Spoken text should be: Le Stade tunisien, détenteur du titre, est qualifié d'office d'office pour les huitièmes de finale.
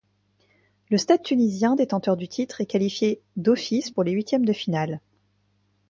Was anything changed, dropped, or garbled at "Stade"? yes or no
no